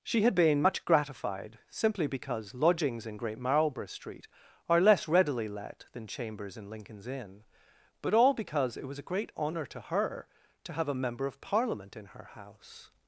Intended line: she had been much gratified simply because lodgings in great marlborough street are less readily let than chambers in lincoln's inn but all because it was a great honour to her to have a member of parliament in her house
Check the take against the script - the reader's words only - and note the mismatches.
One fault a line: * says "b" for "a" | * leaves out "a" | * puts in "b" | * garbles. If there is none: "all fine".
all fine